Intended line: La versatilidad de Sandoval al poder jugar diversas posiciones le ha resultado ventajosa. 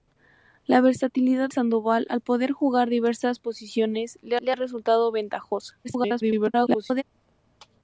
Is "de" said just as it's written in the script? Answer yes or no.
no